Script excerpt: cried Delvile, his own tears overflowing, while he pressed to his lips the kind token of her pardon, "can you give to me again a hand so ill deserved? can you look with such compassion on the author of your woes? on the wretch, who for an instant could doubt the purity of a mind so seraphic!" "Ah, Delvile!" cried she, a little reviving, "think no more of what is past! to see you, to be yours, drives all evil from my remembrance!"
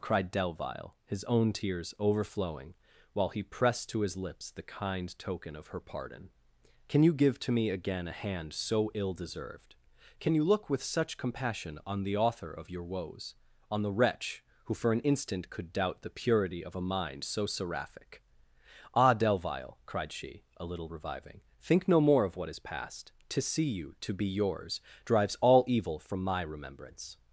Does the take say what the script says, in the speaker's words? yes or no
yes